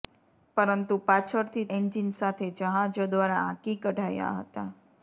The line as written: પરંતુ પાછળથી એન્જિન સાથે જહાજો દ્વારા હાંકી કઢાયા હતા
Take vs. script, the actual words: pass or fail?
pass